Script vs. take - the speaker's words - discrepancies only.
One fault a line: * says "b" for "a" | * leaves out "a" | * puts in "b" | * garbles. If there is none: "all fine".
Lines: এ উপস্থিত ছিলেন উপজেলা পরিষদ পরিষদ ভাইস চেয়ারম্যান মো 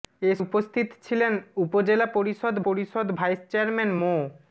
all fine